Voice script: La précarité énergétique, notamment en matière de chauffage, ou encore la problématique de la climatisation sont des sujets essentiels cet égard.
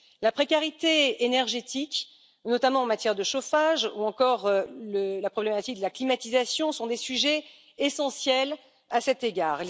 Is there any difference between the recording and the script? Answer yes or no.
yes